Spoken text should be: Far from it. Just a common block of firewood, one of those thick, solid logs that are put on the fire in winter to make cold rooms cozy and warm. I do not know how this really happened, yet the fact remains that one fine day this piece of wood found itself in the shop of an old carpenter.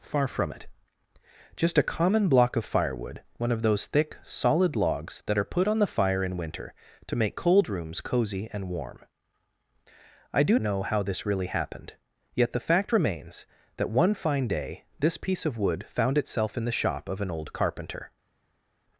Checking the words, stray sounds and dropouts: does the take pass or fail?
fail